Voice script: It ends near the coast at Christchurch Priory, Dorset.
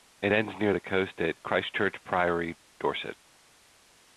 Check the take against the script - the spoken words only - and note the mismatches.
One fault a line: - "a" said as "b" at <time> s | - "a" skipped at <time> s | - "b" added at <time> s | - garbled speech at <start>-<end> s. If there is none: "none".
none